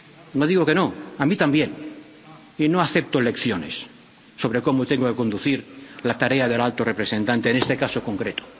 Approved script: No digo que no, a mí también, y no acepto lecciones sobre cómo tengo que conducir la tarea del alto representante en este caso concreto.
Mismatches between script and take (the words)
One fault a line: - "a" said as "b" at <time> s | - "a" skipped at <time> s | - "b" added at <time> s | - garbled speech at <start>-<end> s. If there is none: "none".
none